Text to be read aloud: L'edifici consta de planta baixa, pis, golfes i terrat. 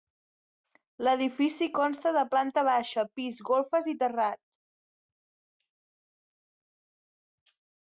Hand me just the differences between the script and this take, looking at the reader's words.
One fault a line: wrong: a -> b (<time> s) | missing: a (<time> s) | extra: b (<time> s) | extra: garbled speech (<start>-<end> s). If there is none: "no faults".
no faults